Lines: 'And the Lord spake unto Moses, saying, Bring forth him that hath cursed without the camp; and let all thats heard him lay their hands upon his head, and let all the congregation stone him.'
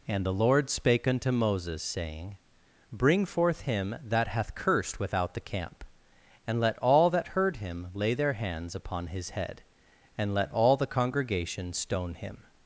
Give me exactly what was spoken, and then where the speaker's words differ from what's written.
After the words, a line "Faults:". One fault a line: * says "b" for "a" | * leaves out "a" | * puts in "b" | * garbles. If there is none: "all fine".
'And the Lord spake unto Moses, saying, Bring forth him that hath cursed without the camp; and let all that heard him lay their hands upon his head, and let all the congregation stone him.'
Faults:
* says "that" for "thats"